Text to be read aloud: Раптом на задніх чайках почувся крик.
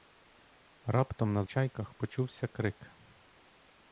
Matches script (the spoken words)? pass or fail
fail